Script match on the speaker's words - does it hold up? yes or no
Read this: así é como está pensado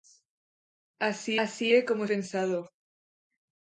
no